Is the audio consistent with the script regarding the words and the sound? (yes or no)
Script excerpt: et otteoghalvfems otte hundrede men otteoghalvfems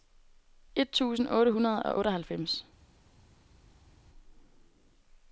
no